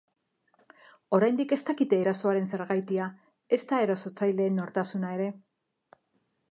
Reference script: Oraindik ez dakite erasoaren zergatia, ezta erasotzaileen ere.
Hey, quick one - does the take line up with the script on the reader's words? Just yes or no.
no